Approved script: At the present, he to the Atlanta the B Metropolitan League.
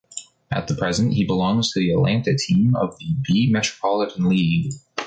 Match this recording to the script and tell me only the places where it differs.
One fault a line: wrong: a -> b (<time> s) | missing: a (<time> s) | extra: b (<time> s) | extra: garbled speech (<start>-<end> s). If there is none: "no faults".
extra: belongs (1.3 s)
extra: team of (2.4 s)